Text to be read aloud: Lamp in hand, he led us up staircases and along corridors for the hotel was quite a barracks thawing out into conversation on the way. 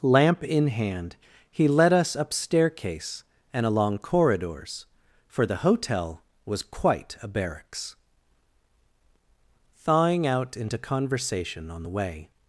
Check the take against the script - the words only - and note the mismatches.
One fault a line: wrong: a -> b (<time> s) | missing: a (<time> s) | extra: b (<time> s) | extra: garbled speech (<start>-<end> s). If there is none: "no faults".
wrong: staircases -> staircase (2.3 s)